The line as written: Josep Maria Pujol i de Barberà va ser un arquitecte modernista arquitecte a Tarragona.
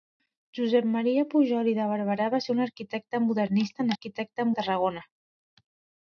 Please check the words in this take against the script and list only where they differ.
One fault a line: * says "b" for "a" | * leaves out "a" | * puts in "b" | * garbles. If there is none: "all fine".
all fine